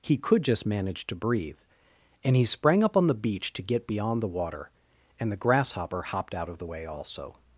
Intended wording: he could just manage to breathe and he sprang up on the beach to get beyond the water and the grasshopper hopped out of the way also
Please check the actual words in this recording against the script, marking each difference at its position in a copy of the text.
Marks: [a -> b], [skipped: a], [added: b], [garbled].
he could just manage to breathe and he sprang up on the beach to get beyond the water and the grasshopper hopped out of the way also